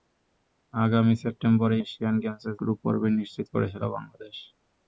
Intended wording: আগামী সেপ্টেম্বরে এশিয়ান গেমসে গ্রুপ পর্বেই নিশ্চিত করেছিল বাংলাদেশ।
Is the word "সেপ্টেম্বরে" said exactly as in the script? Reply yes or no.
yes